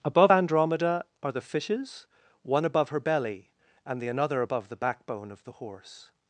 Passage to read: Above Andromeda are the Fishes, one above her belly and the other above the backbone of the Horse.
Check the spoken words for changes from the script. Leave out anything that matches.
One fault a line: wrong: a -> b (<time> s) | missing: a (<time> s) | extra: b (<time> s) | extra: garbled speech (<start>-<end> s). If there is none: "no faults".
wrong: other -> another (4.1 s)